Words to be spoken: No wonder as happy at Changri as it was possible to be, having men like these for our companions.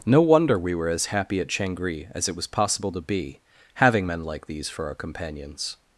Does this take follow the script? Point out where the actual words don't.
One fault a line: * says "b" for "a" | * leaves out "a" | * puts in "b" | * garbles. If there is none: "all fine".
* puts in "we were"